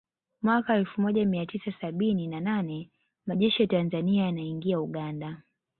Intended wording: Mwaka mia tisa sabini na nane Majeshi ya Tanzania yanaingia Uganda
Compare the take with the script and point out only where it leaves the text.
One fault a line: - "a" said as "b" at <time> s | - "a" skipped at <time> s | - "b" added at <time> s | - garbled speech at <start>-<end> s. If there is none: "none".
- "elfu moja" added at 0.8 s